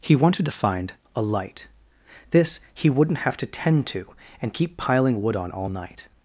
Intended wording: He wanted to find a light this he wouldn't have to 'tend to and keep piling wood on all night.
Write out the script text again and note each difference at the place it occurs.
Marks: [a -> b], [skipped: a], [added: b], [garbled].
He wanted to find a light this he wouldn't have to 'tend to and keep piling wood on all night.